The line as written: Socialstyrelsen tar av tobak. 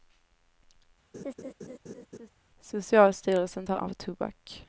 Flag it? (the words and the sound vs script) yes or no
yes